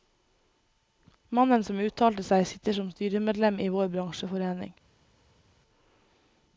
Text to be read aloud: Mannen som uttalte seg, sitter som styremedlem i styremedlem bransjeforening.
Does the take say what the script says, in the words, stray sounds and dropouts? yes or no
no